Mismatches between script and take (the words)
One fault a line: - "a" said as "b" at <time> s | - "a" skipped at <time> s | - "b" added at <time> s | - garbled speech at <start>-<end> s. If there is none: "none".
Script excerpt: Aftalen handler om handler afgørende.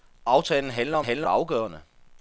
none